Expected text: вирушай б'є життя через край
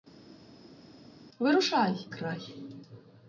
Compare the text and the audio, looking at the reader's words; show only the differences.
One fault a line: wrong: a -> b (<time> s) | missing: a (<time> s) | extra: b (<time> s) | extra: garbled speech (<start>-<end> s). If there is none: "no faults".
missing: б'є життя через (2.1 s)